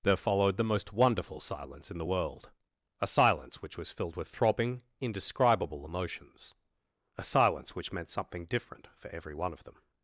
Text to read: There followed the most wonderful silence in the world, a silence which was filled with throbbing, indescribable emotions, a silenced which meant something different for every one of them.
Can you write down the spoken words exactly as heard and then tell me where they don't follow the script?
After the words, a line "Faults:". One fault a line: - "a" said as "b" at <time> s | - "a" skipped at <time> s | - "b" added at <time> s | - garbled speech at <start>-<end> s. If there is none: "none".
There followed the most wonderful silence in the world, a silence which was filled with throbbing, indescribable emotions, a silence which meant something different for every one of them.
Faults:
- "silenced" said as "silence" at 7.2 s